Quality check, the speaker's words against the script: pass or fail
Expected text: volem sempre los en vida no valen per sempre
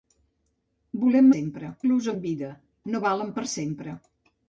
pass